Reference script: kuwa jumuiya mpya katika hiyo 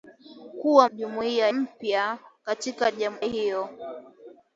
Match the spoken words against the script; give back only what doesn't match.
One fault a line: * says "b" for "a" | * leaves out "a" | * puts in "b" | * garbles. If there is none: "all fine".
all fine